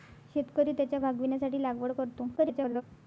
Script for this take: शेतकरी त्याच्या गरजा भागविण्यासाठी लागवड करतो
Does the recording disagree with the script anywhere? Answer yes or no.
yes